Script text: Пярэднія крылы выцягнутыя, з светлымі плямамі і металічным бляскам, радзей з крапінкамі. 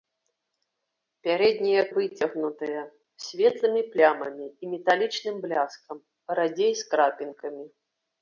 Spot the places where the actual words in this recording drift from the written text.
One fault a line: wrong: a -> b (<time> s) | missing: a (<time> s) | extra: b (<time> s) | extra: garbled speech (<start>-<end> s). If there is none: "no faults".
missing: крылы (1.8 s)